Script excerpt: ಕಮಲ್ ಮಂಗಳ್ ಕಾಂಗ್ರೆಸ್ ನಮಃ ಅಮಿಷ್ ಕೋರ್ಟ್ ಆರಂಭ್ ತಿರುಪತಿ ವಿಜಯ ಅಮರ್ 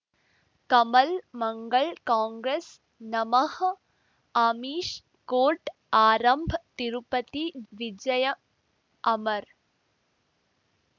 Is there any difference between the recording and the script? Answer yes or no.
no